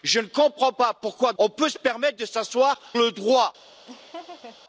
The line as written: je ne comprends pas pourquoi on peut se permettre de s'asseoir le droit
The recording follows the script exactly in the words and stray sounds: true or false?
false